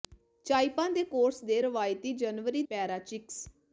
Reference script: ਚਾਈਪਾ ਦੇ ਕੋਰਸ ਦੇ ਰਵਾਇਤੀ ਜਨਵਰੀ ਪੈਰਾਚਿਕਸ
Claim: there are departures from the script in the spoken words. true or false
false